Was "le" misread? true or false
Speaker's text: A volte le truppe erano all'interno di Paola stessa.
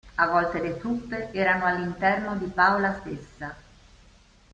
false